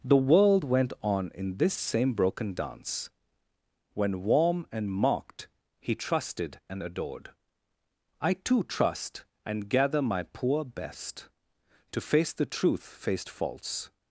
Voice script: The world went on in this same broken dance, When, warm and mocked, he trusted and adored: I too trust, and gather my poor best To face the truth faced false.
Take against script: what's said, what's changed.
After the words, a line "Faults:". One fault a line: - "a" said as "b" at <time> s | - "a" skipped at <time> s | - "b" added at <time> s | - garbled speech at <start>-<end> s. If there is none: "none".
The world went on in this same broken dance, When, warm and mocked, he trusted and adored: I too trust, and gather my poor best To face the truth faced false.
Faults:
none